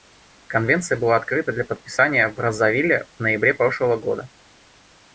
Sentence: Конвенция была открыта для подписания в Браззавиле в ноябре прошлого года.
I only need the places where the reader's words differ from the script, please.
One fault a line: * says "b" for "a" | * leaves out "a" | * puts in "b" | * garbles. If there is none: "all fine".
all fine